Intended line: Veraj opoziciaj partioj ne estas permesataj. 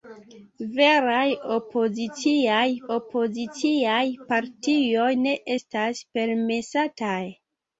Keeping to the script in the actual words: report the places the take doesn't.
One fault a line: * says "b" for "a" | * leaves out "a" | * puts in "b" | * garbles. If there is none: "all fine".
* puts in "opoziciaj"